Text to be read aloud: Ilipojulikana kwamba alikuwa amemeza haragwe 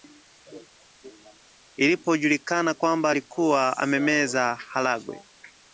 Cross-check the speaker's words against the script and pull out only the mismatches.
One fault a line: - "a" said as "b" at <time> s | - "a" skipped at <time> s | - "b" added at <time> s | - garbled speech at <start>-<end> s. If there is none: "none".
none